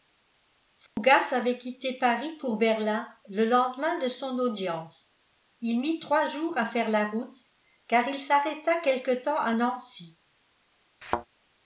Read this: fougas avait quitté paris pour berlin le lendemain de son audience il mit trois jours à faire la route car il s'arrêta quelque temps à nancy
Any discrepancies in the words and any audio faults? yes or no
yes